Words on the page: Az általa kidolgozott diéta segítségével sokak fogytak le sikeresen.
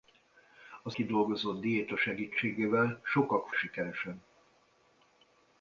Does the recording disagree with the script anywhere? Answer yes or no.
yes